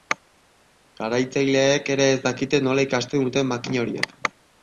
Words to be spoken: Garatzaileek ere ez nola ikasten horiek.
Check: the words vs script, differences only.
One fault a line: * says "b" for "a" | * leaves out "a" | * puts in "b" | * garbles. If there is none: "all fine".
* puts in "dakite"
* puts in "duten makina"